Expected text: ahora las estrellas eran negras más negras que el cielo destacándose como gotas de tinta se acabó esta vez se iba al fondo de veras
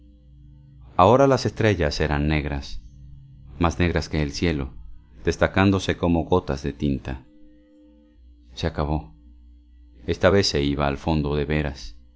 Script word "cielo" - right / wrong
right